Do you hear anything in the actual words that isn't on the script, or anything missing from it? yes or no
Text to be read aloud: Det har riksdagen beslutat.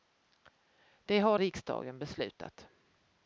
no